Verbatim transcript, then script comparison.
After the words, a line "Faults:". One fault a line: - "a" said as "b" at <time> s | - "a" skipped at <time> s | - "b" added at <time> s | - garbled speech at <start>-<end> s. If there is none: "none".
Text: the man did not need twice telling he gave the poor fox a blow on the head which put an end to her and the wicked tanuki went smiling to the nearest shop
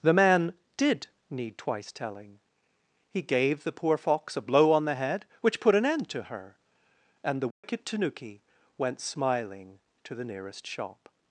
the man did need twice telling he gave the poor fox a blow on the head which put an end to her and the wicked tanuki went smiling to the nearest shop
Faults:
- "not" skipped at 1.1 s